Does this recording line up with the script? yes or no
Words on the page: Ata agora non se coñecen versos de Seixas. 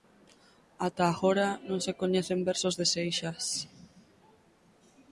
yes